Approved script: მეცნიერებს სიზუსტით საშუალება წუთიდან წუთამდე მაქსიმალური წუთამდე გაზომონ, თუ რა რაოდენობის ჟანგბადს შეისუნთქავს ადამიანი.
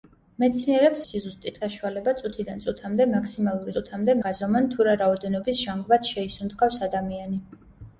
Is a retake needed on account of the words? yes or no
no